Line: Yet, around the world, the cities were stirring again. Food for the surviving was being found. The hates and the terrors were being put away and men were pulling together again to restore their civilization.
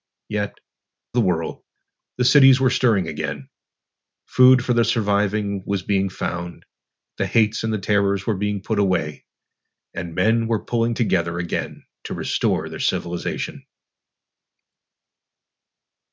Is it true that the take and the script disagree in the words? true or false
true